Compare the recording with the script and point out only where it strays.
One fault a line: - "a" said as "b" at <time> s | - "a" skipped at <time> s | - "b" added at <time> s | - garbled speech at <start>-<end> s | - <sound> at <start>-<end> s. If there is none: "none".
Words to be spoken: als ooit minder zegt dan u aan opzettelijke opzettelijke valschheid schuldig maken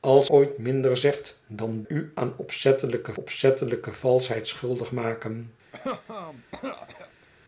- cough at 5.7-7.3 s